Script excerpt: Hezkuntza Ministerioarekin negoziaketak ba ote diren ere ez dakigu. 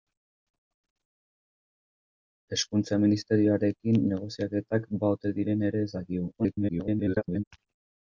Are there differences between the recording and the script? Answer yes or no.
yes